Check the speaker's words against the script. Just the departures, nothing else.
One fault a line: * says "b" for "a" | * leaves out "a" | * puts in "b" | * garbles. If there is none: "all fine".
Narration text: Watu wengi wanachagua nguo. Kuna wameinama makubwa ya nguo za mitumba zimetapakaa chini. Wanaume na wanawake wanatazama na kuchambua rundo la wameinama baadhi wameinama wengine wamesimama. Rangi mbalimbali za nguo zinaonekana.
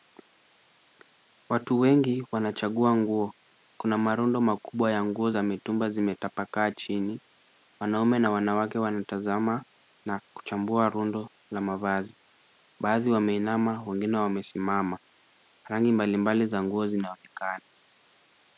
* says "marundo" for "wameinama"
* says "mavazi" for "wameinama"